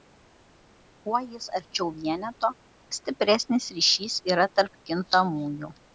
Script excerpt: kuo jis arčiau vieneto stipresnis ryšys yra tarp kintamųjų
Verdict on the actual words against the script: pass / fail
pass